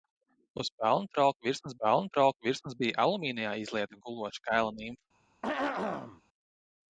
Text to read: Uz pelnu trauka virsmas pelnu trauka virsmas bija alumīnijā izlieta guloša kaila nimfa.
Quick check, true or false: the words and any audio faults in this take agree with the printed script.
false